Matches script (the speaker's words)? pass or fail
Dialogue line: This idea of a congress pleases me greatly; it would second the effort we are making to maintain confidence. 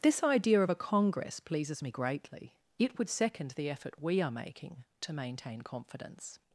pass